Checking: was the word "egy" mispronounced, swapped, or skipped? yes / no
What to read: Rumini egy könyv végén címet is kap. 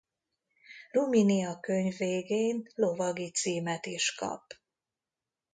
yes